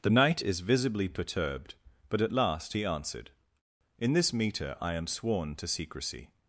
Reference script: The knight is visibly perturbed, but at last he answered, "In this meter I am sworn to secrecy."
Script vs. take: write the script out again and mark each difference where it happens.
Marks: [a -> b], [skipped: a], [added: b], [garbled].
The knight is visibly perturbed, but at last he answered, "In this meter I am sworn to secrecy."